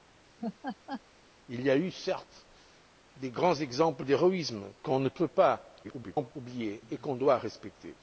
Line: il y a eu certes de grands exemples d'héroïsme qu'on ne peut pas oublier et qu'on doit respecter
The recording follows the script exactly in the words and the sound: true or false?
false